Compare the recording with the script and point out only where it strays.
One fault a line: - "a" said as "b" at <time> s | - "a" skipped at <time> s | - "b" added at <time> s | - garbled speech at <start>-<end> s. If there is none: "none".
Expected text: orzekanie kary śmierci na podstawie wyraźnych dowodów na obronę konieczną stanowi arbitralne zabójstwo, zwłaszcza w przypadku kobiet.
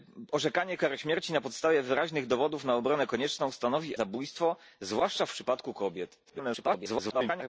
- "arbitralne" skipped at 4.0 s
- garbled speech at 6.2-7.5 s